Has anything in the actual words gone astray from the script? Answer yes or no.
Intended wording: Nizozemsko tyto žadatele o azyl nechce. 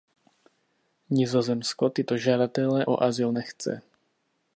no